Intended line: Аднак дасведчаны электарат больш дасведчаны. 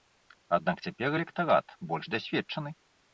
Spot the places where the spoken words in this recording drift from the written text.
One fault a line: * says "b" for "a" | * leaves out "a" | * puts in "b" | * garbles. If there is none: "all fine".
* says "цяпер" for "дасведчаны"